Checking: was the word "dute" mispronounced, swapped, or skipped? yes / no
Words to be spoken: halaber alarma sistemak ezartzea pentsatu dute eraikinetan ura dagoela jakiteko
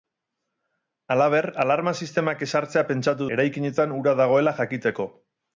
yes